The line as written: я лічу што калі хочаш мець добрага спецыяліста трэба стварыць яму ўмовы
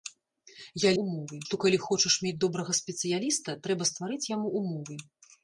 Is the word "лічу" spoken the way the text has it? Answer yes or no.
no